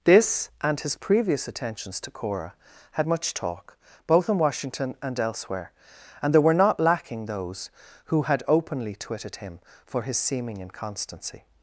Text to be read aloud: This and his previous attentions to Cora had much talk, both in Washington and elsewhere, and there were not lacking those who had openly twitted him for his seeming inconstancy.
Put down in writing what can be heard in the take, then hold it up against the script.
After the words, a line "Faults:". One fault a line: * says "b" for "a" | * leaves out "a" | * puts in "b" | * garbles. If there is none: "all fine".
This and his previous attentions to Cora had much talk, both in Washington and elsewhere, and there were not lacking those who had openly twitted him for his seeming inconstancy.
Faults:
all fine